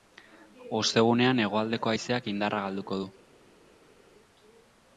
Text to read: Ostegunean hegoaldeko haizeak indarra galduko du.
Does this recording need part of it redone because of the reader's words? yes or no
no